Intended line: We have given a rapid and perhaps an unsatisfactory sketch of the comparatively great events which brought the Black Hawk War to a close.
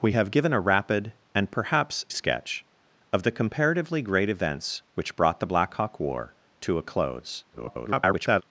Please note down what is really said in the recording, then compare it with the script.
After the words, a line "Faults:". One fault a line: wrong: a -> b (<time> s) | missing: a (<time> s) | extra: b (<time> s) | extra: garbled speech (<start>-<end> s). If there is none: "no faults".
We have given a rapid and perhaps sketch of the comparatively great events which brought the Black Hawk War to a close. [garbled]
Faults:
missing: an unsatisfactory (2.1 s)
extra: garbled speech (7.5-8.4 s)